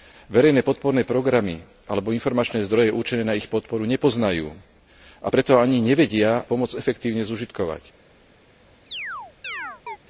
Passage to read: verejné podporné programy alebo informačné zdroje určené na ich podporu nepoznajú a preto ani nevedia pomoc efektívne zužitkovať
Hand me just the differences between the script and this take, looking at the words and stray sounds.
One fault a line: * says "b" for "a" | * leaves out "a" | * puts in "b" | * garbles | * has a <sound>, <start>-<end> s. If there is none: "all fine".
* has a chirp, 8.9-10.0 s